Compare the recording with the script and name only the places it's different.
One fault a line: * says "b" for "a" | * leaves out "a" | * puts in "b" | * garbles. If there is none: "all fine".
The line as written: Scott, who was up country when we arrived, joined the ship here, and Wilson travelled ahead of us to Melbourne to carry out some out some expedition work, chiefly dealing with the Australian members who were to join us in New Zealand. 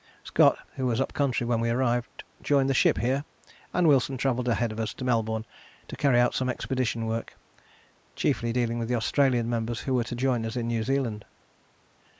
* leaves out "out some"